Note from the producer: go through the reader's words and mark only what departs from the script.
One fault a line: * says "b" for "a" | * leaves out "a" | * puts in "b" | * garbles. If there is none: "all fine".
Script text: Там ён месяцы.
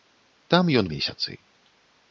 all fine